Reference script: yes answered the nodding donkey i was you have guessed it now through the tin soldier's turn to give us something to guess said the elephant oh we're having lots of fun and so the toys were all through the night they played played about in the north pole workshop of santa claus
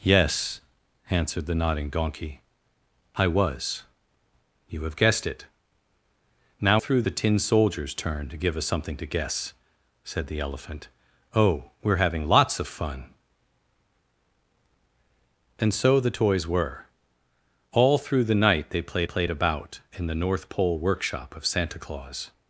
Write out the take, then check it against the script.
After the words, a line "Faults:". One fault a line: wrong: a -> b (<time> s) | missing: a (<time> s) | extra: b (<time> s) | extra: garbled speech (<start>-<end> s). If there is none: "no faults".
yes answered the nodding donkey i was you have guessed it now through the tin soldier's turn to give us something to guess said the elephant oh we're having lots of fun and so the toys were all through the night they played played about in the north pole workshop of santa claus
Faults:
no faults